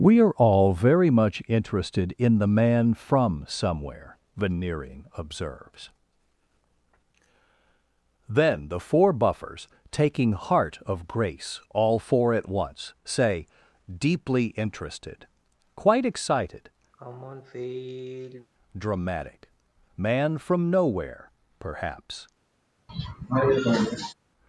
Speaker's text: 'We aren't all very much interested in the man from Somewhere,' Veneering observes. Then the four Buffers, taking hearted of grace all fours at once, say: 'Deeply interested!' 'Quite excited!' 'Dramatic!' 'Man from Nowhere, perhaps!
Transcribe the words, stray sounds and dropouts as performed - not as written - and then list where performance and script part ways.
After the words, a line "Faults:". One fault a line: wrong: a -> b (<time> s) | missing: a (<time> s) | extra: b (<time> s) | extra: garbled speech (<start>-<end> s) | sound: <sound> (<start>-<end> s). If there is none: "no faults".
'We are all very much interested in the man from Somewhere,' Veneering observes. Then the four Buffers, taking heart of grace all four at once, say: 'Deeply interested!' 'Quite excited!' 'Dramatic!' 'Man from Nowhere, perhaps!
Faults:
wrong: aren't -> are (0.2 s)
wrong: hearted -> heart (10.3 s)
wrong: fours -> four (12.0 s)
sound: sigh (16.9-18.5 s)
sound: cough (22.9-24.1 s)